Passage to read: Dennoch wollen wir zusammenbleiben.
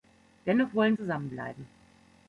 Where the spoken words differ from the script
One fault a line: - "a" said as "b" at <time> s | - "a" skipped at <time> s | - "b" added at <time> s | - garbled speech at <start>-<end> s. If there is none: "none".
- "wir" skipped at 1.0 s